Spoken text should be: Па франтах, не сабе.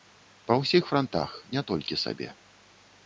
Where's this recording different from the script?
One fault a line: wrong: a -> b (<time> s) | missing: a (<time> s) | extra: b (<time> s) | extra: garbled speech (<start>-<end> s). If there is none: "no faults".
extra: ўсіх (0.6 s)
extra: толькі (1.7 s)